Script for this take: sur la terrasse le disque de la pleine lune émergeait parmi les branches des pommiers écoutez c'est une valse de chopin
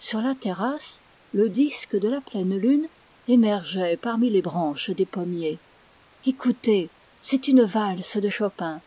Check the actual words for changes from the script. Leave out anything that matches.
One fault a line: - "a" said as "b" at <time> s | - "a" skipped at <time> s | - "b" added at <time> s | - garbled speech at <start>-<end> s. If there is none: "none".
none